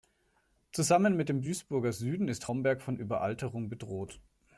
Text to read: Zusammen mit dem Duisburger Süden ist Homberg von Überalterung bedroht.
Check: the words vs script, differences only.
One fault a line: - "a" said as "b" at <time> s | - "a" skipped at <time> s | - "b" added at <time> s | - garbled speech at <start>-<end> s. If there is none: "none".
none